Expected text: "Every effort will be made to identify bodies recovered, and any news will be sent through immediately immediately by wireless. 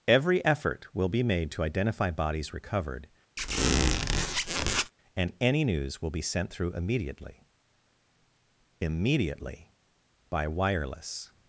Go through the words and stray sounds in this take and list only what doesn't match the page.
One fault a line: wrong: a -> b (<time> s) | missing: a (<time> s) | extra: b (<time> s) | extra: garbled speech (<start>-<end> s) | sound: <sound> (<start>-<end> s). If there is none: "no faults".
sound: squeak (3.4-4.9 s)